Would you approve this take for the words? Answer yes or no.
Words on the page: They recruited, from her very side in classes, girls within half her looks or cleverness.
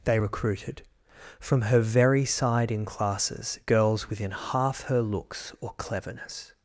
yes